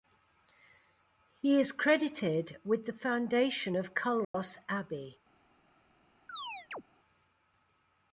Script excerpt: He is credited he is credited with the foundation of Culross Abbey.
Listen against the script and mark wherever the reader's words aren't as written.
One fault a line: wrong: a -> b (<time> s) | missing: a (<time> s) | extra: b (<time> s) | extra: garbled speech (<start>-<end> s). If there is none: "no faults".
missing: he is credited (2.6 s)